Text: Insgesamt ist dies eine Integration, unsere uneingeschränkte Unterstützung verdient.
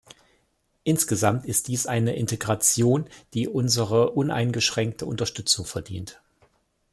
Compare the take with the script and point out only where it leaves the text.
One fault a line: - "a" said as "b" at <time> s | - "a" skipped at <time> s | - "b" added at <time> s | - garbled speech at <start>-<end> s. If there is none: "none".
- "die" added at 3.3 s